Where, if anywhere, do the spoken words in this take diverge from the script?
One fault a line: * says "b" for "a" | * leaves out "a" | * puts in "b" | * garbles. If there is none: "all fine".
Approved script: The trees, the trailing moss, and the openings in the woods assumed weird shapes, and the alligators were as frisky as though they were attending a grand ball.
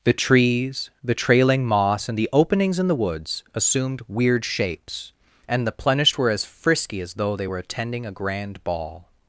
* says "plenished" for "alligators"